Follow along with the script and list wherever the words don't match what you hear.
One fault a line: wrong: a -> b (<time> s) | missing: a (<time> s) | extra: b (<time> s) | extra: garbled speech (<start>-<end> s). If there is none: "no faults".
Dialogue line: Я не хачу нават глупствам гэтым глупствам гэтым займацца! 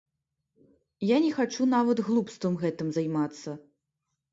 missing: глупствам гэтым (2.9 s)